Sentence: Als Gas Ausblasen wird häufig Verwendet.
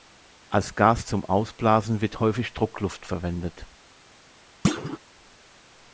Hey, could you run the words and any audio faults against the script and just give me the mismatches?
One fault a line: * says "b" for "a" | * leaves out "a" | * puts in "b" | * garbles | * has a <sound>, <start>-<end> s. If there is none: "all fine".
* puts in "zum"
* puts in "Druckluft"
* has a thud, 4.6-5.0 s